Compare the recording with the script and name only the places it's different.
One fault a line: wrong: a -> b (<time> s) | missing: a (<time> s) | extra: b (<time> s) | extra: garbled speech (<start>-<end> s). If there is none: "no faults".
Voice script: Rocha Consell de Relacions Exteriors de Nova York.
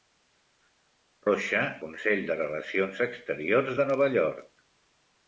no faults